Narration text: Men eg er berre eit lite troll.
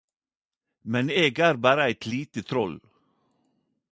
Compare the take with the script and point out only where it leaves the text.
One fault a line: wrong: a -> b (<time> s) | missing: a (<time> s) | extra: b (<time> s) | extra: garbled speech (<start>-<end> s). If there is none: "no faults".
no faults